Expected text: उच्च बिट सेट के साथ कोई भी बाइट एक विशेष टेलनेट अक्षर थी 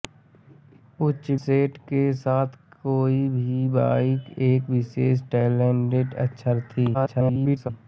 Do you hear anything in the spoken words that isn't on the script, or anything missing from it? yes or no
yes